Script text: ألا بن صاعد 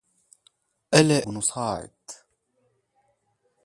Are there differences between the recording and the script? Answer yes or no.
no